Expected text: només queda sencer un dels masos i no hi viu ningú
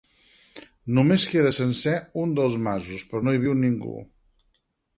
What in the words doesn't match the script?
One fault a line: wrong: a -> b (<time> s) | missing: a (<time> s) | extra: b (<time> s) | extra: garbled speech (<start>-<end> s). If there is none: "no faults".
wrong: i -> però (3.1 s)